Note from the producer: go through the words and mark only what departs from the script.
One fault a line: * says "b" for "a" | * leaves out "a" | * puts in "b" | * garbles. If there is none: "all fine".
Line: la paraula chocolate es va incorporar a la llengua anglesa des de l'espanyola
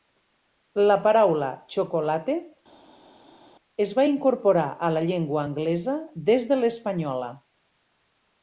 all fine